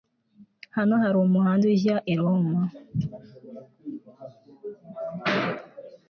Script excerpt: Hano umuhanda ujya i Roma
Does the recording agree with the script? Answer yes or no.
no